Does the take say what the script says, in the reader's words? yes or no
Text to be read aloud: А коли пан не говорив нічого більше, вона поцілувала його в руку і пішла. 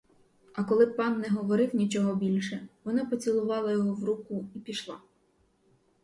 yes